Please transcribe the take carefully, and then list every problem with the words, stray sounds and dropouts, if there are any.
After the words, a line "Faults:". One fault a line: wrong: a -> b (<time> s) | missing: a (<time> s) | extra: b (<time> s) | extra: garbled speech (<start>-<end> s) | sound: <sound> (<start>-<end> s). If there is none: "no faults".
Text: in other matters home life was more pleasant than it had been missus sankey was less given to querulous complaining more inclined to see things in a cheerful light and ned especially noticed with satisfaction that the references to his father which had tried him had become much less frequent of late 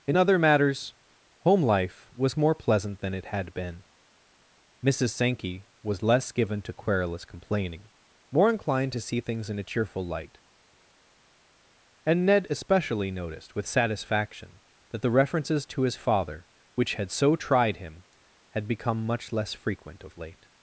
in other matters home life was more pleasant than it had been missus sankey was less given to querulous complaining more inclined to see things in a cheerful light and ned especially noticed with satisfaction that the references to his father which had so tried him had become much less frequent of late
Faults:
extra: so (17.1 s)